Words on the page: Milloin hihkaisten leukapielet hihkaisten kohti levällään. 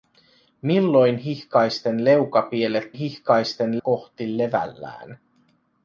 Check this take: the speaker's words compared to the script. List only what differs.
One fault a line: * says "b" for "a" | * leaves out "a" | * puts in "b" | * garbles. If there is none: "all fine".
all fine